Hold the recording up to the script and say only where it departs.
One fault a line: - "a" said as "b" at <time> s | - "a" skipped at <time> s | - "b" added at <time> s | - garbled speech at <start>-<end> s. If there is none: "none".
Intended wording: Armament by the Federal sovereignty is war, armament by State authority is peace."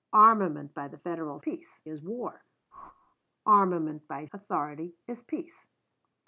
- "sovereignty" said as "peace" at 1.4 s
- "State" skipped at 4.2 s